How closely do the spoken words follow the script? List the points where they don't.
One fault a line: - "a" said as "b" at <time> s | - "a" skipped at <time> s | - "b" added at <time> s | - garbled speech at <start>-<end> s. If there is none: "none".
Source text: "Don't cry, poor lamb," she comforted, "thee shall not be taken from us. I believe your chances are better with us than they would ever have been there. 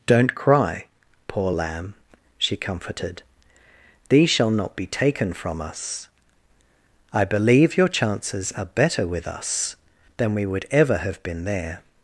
- "they" said as "we" at 10.3 s